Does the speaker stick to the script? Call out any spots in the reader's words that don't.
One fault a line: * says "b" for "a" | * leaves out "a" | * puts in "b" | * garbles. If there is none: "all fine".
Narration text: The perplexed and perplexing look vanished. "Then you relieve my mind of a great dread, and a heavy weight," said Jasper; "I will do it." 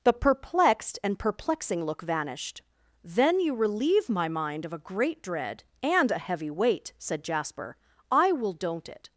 * says "don't" for "do"